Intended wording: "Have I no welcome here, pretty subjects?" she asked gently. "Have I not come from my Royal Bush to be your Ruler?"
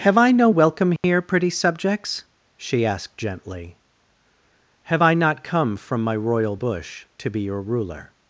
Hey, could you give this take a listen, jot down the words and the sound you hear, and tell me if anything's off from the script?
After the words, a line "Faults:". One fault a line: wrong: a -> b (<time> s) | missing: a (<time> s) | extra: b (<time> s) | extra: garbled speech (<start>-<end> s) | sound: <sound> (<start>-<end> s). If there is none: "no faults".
"Have I no welcome here, pretty subjects?" she asked gently. "Have I not come from my Royal Bush to be your Ruler?"
Faults:
sound: dropout (1.0-1.0 s)